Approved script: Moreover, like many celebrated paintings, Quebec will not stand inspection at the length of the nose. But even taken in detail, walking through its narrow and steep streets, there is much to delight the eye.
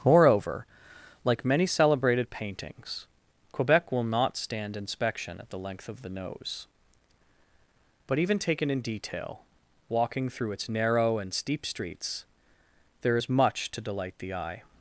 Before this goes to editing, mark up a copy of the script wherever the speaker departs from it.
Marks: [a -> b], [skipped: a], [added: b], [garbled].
Moreover, like many celebrated paintings, Quebec will not stand inspection at the length of the nose. But even taken in detail, walking through its narrow and steep streets, there is much to delight the eye.